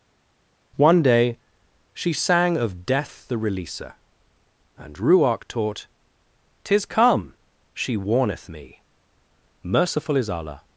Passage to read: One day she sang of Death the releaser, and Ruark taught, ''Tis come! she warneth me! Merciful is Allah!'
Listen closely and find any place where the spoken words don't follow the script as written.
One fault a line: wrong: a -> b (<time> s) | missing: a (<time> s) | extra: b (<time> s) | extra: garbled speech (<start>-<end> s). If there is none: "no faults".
no faults